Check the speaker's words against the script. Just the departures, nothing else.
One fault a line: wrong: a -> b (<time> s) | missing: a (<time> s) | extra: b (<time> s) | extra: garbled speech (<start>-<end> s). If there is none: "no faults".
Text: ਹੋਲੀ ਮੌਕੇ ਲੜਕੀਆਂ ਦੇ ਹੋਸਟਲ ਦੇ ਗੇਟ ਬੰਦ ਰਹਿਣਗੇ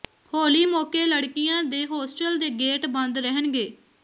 no faults